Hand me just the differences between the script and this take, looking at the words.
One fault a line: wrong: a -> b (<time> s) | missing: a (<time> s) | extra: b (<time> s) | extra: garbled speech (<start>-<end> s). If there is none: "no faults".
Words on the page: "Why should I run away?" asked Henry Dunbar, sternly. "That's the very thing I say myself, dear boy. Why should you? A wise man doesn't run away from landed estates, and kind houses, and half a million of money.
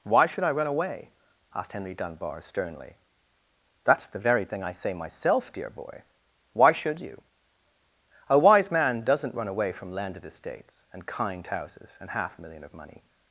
no faults